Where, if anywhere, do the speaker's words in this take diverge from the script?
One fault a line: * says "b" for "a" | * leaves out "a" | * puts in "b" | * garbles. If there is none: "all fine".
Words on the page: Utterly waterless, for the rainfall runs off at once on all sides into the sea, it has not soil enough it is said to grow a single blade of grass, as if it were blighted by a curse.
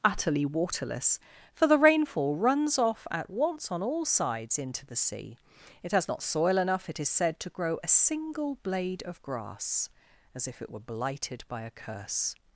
all fine